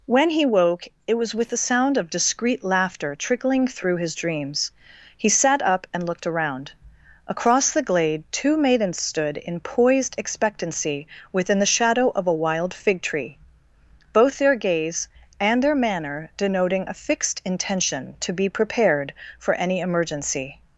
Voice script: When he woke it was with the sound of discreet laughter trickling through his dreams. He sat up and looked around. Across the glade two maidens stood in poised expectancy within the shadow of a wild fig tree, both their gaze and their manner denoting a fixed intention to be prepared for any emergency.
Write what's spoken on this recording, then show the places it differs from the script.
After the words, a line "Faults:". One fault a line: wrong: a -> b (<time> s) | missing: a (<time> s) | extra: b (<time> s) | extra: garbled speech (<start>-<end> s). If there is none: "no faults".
When he woke it was with the sound of discreet laughter trickling through his dreams. He sat up and looked around. Across the glade two maidens stood in poised expectancy within the shadow of a wild fig tree, both their gaze and their manner denoting a fixed intention to be prepared for any emergency.
Faults:
no faults